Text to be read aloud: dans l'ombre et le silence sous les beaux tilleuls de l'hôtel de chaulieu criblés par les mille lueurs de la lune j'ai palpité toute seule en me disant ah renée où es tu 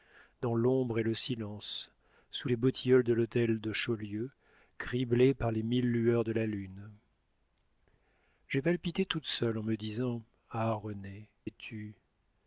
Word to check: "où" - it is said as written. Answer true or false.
false